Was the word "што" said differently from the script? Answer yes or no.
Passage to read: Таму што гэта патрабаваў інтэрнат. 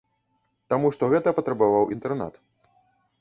no